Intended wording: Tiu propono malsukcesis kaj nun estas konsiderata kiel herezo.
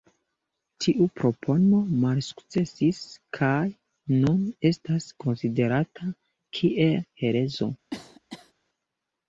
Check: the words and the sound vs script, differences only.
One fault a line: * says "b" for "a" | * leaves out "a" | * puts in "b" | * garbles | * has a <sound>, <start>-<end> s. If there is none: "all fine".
* has a cough, 7.9-8.5 s